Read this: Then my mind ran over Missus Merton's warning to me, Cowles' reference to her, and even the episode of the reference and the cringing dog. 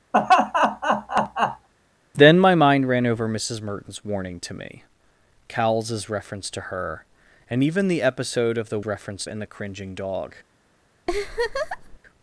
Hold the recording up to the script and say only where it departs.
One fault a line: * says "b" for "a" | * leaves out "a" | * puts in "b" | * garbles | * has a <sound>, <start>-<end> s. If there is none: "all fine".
* has a laugh, 0.1-1.7 s
* has a laugh, 11.1-12.0 s